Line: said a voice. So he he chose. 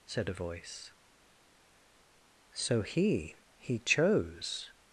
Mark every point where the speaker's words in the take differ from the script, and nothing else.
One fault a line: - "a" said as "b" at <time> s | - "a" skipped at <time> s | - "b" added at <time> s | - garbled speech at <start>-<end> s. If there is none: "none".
none